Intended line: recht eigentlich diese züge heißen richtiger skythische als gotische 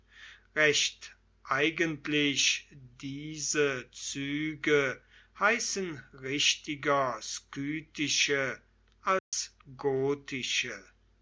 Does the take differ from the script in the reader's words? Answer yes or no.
no